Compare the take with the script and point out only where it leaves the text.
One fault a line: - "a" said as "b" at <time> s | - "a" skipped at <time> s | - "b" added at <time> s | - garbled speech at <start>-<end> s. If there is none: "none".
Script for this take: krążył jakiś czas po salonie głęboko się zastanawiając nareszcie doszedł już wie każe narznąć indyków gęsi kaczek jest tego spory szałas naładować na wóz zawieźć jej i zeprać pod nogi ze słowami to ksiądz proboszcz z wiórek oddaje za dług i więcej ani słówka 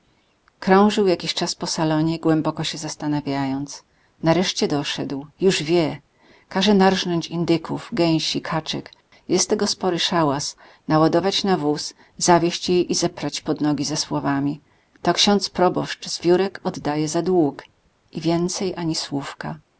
none